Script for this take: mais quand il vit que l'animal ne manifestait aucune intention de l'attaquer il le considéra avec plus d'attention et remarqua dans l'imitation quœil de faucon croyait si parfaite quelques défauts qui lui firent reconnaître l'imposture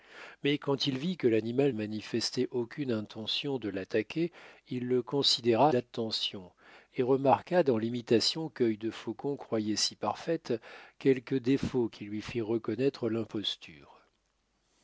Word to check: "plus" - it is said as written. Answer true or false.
false